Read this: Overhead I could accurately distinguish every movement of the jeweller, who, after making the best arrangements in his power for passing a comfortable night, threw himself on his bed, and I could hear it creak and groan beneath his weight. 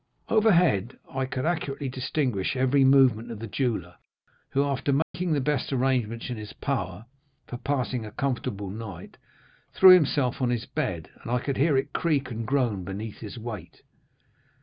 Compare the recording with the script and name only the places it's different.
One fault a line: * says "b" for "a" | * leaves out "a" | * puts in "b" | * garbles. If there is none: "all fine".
all fine